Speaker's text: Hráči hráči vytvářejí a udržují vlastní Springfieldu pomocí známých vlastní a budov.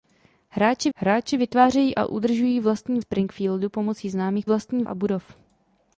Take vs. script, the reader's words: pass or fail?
pass